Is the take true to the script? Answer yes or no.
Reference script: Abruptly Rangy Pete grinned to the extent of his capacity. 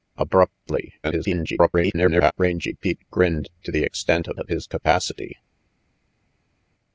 no